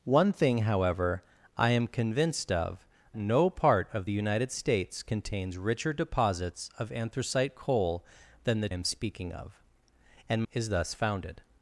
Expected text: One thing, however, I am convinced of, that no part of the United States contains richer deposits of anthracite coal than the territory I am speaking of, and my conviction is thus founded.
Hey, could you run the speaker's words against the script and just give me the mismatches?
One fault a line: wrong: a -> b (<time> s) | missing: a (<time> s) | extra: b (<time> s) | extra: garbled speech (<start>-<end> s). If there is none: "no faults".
missing: that (2.9 s)
missing: territory I (8.7 s)
missing: my conviction (10.4 s)